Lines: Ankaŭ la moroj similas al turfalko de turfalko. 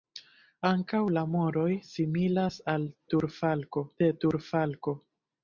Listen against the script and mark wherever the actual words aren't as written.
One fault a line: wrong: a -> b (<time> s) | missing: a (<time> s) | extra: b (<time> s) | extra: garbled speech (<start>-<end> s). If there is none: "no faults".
no faults